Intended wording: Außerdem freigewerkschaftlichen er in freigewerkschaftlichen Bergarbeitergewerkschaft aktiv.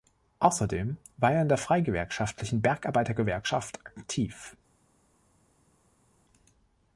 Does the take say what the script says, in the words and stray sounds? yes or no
no